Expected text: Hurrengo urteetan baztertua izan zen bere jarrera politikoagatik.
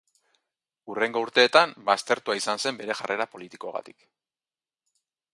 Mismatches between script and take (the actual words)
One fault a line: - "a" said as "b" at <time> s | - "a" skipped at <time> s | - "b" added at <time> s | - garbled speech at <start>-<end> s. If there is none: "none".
none